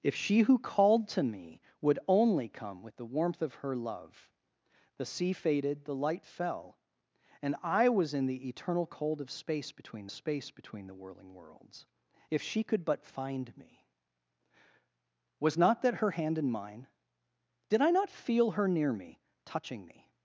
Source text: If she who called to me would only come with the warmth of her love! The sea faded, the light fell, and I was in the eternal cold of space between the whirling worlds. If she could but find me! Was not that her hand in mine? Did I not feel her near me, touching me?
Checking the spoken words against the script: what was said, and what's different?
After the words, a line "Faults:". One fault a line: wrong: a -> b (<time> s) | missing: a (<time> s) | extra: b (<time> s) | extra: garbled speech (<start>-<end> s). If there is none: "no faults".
If she who called to me would only come with the warmth of her love! The sea faded, the light fell, and I was in the eternal cold of space between space between the whirling worlds. If she could but find me! Was not that her hand in mine? Did I not feel her near me, touching me?
Faults:
extra: space between (10.1 s)